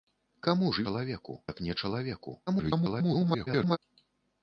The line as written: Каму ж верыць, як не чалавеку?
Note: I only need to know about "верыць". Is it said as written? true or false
false